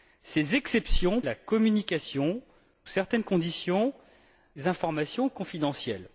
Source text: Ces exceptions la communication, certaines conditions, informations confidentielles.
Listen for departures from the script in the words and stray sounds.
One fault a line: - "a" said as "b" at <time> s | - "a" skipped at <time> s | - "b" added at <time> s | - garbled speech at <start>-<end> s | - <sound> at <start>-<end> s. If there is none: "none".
none